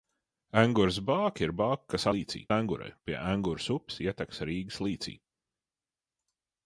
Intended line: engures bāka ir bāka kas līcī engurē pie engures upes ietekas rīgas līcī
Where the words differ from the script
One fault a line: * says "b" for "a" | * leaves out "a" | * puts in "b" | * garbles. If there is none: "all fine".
all fine